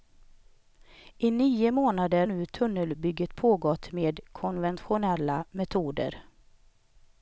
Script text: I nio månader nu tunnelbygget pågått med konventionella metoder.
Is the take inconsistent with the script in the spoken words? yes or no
no